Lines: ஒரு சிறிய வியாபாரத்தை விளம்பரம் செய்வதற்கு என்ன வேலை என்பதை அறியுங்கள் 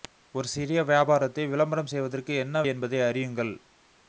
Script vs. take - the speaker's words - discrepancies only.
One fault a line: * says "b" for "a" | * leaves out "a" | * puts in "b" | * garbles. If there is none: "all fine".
* leaves out "வேலை"